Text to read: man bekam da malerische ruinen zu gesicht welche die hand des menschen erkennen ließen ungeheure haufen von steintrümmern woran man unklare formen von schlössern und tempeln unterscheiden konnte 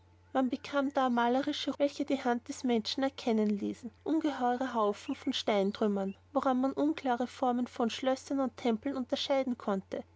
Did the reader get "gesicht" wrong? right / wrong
wrong